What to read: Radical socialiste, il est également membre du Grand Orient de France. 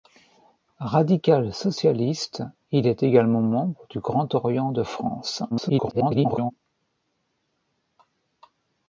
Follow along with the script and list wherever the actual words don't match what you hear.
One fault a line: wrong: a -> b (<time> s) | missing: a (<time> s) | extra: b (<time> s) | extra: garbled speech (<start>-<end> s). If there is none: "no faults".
extra: garbled speech (5.5-6.5 s)